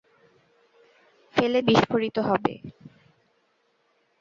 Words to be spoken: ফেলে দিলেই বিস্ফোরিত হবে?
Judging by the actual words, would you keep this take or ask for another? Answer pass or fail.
fail